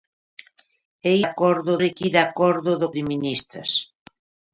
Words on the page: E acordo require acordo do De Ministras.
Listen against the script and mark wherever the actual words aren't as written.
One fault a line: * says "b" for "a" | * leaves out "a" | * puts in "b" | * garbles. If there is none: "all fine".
all fine